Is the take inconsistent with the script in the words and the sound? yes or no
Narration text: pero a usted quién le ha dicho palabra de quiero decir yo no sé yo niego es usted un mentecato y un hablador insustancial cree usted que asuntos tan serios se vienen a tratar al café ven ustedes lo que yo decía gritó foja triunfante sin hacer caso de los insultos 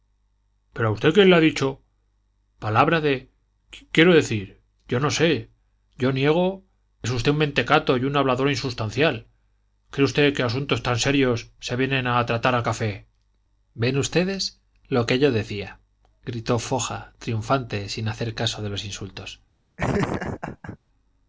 yes